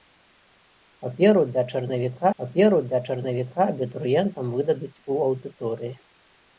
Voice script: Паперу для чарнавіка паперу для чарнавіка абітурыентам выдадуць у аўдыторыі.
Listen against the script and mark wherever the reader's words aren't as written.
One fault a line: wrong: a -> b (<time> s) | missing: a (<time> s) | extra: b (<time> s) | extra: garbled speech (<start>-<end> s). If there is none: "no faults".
no faults